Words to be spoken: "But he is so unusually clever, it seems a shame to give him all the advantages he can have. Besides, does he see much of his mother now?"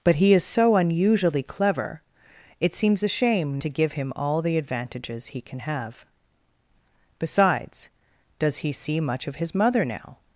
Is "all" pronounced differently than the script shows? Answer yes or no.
no